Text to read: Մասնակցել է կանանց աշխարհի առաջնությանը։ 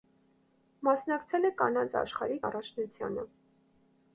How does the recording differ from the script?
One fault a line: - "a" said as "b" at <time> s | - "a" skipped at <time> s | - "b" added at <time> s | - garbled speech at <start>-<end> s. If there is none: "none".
none